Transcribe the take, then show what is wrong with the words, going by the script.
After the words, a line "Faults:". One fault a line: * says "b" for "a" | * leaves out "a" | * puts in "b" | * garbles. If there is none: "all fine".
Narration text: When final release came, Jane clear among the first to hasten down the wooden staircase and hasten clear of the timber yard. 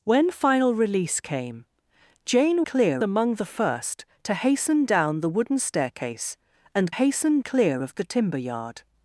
When final release came, Jane clear among the first to hasten down the wooden staircase and hasten clear of the timber yard.
Faults:
all fine